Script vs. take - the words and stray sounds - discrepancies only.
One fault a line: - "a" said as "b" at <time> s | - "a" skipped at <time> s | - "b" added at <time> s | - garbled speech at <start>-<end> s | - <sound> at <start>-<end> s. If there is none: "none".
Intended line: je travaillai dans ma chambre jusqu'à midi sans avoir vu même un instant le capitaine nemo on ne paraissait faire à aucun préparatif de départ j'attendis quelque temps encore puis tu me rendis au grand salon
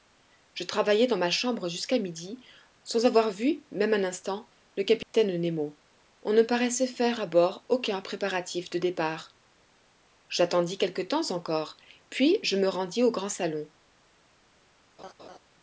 - dropout at 5.0-5.1 s
- "bord" added at 7.3 s
- "tu" said as "je" at 12.4 s
- laugh at 15.0-15.4 s